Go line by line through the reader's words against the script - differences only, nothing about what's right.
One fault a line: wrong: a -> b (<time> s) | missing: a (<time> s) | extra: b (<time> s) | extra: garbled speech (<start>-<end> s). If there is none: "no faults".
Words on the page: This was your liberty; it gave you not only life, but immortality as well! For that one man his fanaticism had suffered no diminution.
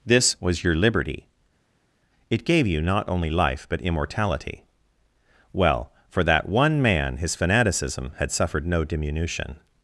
missing: as (4.6 s)